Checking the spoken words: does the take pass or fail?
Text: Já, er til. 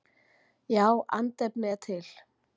fail